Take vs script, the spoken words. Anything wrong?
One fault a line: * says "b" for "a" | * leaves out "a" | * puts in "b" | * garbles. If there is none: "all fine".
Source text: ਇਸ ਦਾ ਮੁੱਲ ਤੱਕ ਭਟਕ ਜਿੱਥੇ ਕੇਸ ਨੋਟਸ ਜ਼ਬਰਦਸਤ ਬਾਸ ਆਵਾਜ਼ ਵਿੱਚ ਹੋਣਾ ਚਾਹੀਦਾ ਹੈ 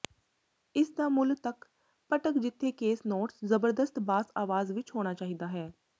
all fine